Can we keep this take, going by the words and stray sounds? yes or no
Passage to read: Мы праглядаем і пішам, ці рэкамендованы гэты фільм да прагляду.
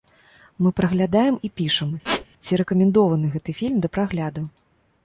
no